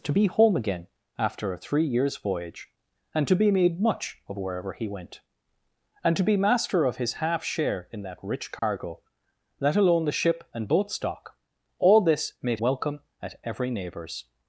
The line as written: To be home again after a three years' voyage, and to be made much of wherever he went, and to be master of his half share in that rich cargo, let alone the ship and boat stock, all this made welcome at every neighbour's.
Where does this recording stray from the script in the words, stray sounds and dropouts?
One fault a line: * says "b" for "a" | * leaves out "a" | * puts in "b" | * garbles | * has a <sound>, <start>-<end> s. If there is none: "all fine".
* has a dropout, 8.6-8.6 s